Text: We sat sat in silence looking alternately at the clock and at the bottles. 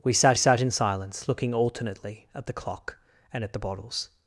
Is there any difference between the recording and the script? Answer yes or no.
no